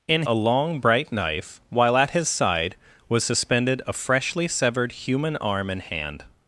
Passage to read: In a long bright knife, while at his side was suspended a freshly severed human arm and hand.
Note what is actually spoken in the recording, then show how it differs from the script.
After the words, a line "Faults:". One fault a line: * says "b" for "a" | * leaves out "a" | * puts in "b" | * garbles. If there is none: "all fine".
In a long bright knife, while at his side was suspended a freshly severed human arm and hand.
Faults:
all fine